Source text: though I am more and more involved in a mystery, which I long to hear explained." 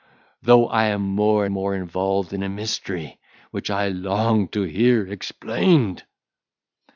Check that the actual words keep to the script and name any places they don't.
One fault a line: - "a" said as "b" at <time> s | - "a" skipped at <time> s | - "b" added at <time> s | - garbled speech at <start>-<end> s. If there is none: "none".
- "and" skipped at 1.4 s